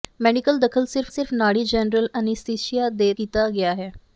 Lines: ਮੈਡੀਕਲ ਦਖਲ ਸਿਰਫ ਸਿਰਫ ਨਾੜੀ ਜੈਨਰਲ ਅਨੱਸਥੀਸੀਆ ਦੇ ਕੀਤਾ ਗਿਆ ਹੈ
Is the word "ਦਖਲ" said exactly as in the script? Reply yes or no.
yes